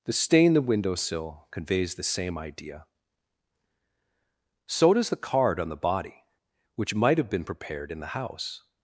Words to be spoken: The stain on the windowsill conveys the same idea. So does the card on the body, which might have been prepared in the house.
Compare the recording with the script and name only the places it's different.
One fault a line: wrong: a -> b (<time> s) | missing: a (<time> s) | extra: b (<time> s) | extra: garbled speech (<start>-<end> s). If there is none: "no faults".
missing: on (0.5 s)